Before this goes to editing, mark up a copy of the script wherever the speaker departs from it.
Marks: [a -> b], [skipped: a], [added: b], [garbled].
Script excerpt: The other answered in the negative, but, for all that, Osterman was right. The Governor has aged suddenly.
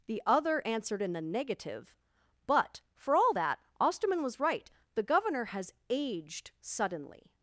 The other answered in the negative, but, for all that, Osterman was right. The Governor has aged suddenly.